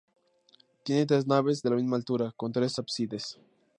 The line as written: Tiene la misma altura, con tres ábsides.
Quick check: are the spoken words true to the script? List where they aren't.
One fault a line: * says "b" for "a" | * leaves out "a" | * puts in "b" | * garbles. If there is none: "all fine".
* puts in "tres naves de"